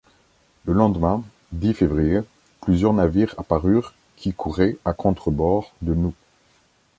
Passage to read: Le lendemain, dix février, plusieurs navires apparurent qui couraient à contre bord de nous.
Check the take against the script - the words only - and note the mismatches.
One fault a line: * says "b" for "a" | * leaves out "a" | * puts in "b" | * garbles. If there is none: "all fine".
all fine